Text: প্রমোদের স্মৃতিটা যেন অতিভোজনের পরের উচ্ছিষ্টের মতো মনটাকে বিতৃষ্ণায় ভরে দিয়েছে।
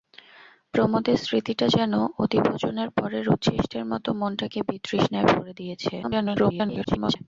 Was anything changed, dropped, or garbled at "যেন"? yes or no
no